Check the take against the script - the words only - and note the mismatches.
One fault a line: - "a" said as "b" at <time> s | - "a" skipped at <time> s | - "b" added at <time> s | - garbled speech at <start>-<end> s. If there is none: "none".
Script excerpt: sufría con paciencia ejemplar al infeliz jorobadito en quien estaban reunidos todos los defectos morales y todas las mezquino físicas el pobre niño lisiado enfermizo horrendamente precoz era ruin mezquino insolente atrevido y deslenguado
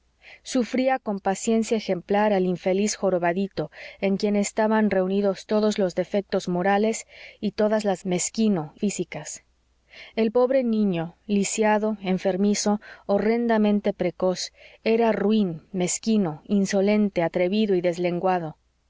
none